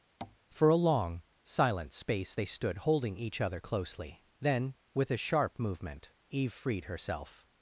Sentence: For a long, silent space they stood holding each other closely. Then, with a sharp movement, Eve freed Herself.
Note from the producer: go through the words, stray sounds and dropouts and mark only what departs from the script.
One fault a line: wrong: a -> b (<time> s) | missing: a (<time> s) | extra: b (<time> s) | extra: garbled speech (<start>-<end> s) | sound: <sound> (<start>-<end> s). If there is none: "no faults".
sound: tap (0.2-0.4 s)